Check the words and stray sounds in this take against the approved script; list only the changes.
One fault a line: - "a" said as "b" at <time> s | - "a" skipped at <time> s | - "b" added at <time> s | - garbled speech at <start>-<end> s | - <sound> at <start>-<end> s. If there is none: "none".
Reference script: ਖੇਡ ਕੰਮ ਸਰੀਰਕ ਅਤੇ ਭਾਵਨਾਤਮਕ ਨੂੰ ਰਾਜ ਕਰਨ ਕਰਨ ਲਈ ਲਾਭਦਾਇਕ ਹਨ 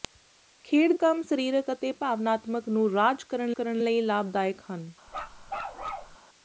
- bark at 5.1-6.2 s